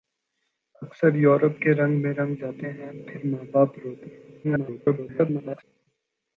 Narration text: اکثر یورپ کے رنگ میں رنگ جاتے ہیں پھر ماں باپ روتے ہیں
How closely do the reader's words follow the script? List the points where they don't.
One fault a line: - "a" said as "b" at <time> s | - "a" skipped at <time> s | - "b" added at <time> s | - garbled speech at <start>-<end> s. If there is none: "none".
- garbled speech at 4.4-5.6 s